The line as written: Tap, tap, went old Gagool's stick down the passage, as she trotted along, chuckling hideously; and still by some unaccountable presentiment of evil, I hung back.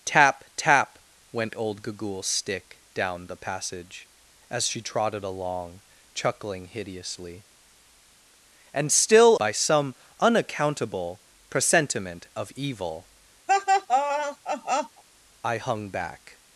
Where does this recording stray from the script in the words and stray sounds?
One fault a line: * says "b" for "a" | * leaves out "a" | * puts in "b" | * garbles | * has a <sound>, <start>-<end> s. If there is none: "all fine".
* has a laugh, 13.5-15.0 s